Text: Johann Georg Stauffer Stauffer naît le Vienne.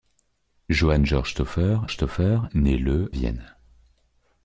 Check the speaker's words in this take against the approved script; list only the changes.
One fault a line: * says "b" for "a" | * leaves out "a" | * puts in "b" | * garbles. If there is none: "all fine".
all fine